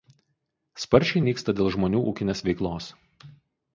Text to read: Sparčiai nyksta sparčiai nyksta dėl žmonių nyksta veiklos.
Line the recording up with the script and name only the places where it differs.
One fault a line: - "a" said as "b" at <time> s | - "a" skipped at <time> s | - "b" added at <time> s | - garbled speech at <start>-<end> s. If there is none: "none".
- "sparčiai nyksta" skipped at 1.6 s
- "nyksta" said as "ūkinės" at 2.1 s